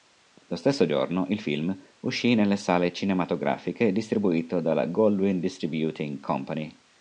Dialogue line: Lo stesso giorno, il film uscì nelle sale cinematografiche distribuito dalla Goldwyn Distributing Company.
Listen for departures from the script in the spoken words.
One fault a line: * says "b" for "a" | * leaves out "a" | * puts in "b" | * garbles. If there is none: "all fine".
all fine